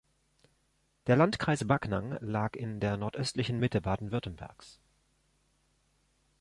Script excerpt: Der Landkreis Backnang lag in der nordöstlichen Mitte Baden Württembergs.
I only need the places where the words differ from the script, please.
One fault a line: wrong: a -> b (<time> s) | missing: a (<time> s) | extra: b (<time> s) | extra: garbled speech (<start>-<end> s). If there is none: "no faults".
no faults